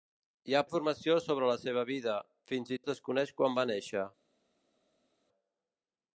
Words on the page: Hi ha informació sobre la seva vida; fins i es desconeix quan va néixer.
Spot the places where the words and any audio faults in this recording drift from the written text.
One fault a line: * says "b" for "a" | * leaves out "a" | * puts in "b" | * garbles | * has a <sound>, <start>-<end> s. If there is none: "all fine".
all fine